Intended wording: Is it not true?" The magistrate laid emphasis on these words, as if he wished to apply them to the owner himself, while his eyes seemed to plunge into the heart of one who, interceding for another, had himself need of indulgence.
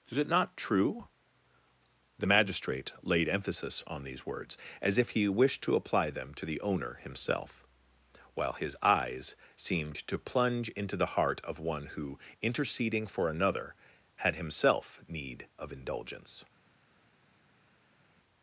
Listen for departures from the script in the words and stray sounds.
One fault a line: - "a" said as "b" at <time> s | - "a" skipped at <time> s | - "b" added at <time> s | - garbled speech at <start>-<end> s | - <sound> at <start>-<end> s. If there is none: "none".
none